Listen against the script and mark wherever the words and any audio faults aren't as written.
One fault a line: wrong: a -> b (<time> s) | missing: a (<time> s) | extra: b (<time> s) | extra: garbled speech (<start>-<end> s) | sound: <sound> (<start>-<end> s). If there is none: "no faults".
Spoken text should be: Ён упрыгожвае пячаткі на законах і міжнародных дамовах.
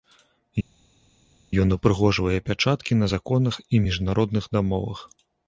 no faults